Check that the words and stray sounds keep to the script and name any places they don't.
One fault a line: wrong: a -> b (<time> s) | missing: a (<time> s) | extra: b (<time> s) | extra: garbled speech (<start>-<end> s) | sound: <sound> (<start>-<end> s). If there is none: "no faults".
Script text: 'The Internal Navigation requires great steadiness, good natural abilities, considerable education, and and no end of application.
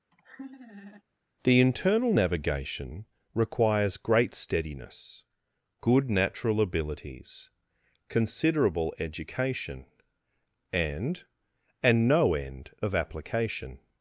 sound: laugh (0.1-1.0 s)